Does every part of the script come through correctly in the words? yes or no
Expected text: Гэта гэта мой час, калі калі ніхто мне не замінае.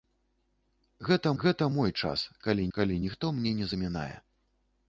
yes